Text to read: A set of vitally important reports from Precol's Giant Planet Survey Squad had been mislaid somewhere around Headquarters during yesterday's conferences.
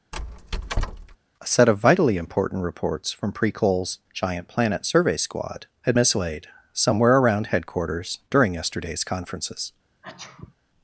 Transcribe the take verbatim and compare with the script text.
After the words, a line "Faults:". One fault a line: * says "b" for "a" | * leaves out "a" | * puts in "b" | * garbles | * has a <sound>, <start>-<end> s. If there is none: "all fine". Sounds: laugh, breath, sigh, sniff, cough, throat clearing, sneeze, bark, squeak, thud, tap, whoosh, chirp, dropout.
A set of vitally important reports from Precol's Giant Planet Survey Squad had mislaid somewhere around Headquarters during yesterday's conferences.
Faults:
* has a squeak, 0.1-1.2 s
* leaves out "been"
* has a sneeze, 10.0-10.5 s